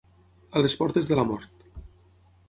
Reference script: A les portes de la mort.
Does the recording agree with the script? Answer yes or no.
yes